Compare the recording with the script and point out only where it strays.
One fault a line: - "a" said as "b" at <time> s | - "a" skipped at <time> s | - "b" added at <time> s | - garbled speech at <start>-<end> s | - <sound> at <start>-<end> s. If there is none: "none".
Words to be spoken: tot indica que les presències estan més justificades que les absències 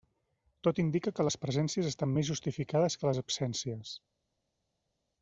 none